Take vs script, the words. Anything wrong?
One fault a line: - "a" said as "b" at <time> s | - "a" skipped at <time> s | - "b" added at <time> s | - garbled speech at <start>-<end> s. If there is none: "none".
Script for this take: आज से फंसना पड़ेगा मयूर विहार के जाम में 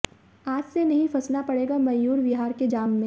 - "नहीं" added at 0.8 s